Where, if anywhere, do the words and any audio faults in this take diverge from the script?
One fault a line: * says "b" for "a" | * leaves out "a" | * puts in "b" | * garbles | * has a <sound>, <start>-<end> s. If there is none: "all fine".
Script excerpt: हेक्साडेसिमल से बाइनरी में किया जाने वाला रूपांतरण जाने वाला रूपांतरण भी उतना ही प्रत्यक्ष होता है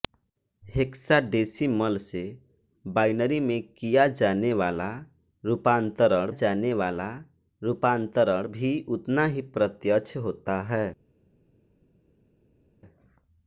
all fine